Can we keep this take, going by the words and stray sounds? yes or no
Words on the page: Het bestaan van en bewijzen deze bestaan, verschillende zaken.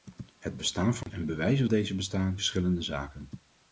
no